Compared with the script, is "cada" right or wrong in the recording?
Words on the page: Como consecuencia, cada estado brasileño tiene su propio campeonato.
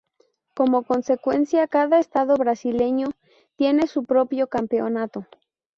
right